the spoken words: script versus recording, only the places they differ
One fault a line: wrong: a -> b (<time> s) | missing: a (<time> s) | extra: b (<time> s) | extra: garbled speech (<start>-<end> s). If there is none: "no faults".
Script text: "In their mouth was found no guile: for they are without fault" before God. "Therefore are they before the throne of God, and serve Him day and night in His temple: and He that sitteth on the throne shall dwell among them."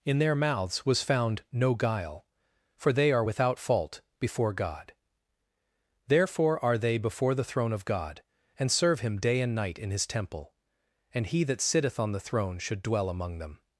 wrong: mouth -> mouths (0.3 s)
wrong: shall -> should (12.6 s)